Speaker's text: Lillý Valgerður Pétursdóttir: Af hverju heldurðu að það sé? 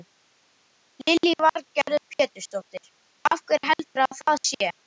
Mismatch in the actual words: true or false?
false